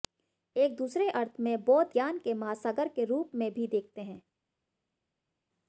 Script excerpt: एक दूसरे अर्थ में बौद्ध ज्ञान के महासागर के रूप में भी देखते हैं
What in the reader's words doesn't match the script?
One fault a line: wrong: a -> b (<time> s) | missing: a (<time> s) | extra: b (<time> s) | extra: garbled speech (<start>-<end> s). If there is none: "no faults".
no faults